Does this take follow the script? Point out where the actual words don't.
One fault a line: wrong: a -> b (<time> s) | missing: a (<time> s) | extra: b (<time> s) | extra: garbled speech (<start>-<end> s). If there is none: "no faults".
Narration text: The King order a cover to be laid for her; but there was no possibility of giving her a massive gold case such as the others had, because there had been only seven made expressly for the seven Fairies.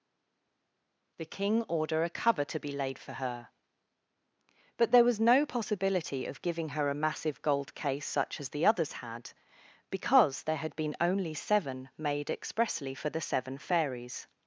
no faults